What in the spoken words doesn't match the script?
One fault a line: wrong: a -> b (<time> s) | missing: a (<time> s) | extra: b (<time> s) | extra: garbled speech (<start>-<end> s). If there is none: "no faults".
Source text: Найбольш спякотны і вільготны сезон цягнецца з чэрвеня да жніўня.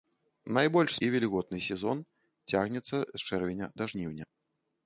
missing: спякотны (0.9 s)